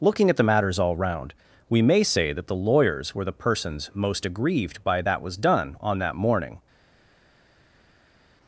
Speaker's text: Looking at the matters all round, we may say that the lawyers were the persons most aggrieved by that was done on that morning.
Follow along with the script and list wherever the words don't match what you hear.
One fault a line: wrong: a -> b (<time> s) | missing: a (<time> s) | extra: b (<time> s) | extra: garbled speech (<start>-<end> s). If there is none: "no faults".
no faults